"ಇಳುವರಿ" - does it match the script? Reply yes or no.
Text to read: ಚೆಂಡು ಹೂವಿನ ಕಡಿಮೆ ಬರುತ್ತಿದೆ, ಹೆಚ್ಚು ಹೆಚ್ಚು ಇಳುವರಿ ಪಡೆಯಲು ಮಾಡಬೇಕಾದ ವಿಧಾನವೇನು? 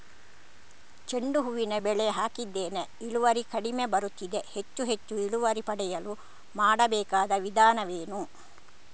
yes